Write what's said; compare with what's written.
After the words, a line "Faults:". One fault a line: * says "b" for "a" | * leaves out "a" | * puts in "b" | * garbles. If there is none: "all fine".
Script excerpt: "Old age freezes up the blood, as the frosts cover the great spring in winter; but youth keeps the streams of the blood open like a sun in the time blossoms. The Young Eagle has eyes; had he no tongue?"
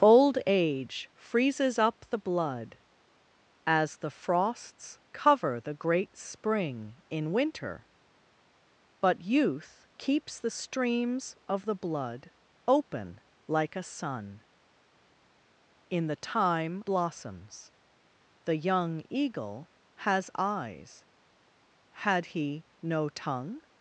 "Old age freezes up the blood, as the frosts cover the great spring in winter; but youth keeps the streams of the blood open like a sun in the time blossoms. The Young Eagle has eyes; had he no tongue?"
Faults:
all fine